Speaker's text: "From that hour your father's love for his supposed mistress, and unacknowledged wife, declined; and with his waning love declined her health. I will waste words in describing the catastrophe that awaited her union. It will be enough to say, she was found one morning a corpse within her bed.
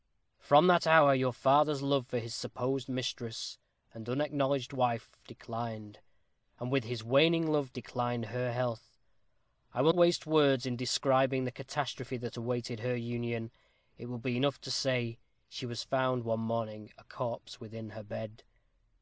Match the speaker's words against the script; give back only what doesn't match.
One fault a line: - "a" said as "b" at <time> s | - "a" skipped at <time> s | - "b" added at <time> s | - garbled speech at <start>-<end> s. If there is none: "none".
none